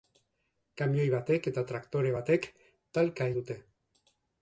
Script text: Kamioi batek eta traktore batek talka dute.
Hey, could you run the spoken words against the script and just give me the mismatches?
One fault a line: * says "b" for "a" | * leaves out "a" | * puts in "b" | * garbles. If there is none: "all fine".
all fine